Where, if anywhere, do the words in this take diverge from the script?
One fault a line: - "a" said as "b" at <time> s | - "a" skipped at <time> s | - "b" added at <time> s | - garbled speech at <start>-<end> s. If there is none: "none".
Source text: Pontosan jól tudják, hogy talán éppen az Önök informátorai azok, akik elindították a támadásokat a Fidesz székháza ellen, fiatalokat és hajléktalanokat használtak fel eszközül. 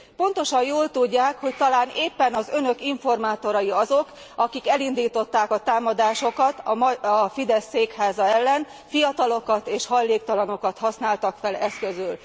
none